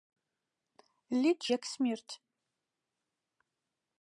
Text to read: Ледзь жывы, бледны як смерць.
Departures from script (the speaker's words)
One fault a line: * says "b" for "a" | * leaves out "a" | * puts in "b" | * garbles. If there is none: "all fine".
* leaves out "жывы бледны"